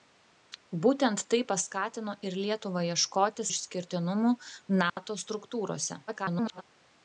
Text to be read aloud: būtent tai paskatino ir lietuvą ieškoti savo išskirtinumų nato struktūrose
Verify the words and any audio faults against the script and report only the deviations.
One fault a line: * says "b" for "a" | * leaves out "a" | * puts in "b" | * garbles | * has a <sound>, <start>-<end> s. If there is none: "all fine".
* leaves out "savo"
* has a dropout, 4.9-5.0 s
* garbles